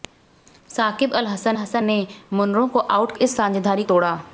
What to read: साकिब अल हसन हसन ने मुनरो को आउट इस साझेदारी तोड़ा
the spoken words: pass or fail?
pass